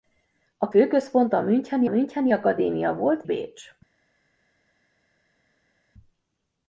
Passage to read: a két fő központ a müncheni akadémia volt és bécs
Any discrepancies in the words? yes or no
yes